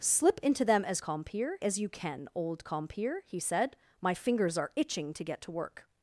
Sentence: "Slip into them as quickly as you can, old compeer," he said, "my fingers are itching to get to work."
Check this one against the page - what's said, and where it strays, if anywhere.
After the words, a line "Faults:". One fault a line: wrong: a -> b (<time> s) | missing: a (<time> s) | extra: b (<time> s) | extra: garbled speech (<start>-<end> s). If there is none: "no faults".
"Slip into them as compeer as you can, old compeer," he said, "my fingers are itching to get to work."
Faults:
wrong: quickly -> compeer (1.0 s)